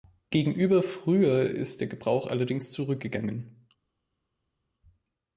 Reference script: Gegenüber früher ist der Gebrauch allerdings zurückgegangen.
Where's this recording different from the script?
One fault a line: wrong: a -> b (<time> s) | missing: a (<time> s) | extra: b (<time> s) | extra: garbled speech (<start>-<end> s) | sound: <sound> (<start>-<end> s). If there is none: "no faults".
no faults